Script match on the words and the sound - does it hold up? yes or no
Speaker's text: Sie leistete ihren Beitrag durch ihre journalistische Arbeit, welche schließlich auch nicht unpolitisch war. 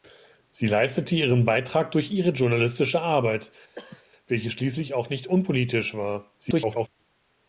no